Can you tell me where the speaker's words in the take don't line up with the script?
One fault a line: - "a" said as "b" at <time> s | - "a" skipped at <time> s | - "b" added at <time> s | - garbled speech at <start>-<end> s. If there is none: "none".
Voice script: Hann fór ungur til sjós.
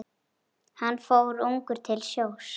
none